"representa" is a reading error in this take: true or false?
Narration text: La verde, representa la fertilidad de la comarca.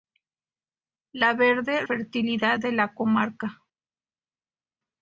true